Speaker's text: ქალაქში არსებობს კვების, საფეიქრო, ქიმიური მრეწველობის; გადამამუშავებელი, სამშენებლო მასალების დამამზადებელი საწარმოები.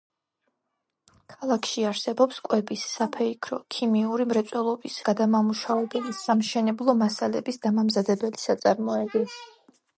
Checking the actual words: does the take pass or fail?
pass